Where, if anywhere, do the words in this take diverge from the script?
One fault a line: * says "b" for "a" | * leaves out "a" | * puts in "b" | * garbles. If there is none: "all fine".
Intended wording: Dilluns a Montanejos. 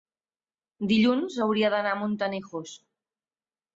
* puts in "hauria d'anar"